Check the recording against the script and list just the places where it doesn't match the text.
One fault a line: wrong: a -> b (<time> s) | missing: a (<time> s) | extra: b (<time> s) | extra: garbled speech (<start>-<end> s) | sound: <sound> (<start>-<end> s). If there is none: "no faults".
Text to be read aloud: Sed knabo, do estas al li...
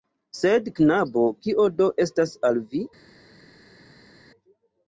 extra: kio (1.4 s)
wrong: li -> vi (2.7 s)